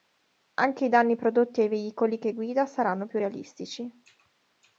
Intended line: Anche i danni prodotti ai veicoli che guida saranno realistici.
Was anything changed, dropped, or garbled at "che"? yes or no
no